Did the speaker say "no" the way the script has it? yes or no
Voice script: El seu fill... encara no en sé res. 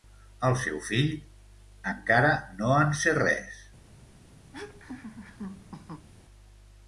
yes